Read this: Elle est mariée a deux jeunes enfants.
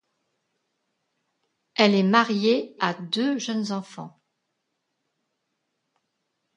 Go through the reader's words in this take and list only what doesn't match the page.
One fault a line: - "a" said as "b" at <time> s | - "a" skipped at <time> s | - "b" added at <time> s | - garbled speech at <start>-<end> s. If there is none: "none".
none